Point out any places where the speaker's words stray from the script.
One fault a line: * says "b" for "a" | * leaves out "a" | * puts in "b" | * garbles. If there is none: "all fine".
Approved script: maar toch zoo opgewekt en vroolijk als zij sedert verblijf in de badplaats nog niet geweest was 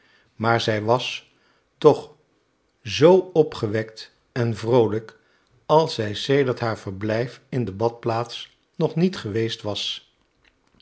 * puts in "zij was"
* puts in "haar"